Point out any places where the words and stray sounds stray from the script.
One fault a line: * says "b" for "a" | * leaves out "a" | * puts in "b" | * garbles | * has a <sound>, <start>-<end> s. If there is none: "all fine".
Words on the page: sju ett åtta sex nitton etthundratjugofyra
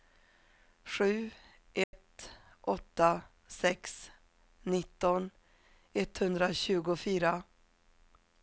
* has a dropout, 1.8-1.9 s